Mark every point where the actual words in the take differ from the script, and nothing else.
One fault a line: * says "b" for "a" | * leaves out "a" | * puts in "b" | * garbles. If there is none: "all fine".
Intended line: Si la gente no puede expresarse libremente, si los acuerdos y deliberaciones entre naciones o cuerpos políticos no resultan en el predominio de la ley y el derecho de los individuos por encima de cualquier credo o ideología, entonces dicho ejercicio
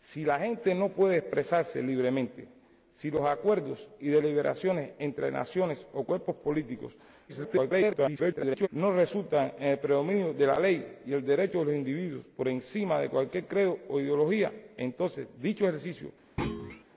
* garbles